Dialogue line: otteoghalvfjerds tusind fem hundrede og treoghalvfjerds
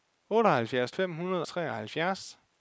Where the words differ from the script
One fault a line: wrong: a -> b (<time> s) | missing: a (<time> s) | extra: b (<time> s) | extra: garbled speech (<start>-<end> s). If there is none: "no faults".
missing: tusind (0.9 s)
missing: og (1.5 s)